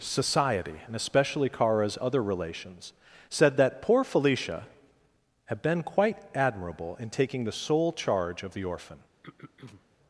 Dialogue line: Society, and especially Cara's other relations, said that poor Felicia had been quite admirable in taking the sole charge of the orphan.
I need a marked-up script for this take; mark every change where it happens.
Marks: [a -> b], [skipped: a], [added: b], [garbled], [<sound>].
Society, and especially Cara's other relations, said that poor Felicia had been quite admirable in taking the sole charge of the orphan. [throat clearing]